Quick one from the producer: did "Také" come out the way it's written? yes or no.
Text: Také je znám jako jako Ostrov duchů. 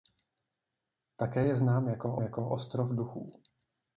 yes